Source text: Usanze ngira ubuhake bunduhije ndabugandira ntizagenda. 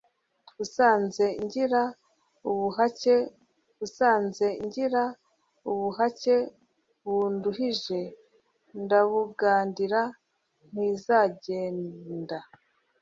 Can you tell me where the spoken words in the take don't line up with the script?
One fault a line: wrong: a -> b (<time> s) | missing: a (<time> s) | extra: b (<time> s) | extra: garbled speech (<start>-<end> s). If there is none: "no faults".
extra: usanze ngira ubuhake (3.8 s)